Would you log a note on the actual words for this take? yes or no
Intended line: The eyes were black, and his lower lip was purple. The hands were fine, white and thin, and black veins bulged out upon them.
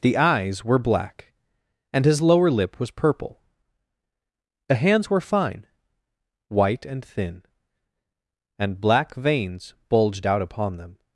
no